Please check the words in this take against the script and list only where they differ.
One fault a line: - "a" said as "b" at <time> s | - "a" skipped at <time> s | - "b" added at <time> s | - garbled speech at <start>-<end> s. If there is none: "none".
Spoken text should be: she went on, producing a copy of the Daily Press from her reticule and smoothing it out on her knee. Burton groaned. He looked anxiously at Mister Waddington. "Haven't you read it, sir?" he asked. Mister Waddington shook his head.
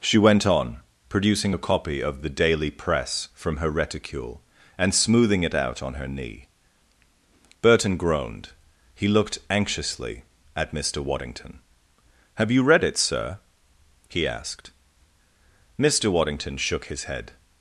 - "Haven't" said as "Have" at 12.3 s